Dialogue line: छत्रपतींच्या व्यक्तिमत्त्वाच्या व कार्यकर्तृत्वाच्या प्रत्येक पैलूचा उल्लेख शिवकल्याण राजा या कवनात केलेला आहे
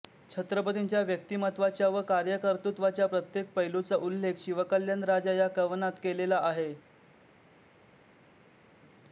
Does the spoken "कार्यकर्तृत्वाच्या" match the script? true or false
true